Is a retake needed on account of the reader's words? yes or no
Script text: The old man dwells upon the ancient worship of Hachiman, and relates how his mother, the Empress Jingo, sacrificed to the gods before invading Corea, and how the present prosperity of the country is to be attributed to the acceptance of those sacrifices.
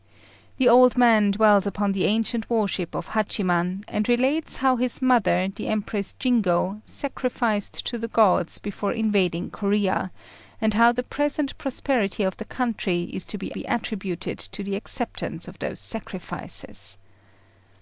yes